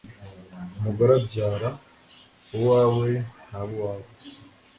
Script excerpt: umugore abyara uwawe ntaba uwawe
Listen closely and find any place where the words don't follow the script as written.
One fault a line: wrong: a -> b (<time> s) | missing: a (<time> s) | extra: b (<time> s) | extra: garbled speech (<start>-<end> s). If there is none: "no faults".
no faults